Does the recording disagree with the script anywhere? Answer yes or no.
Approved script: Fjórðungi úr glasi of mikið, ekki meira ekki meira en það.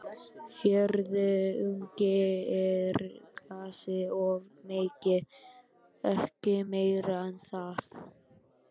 yes